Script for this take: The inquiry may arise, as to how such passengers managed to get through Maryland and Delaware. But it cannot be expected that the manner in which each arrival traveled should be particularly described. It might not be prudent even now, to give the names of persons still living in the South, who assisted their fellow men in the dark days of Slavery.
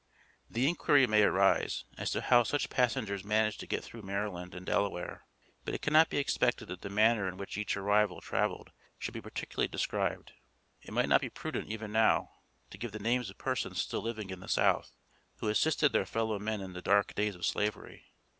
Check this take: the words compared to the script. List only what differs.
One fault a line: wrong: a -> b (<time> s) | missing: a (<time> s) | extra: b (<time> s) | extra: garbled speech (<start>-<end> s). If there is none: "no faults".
no faults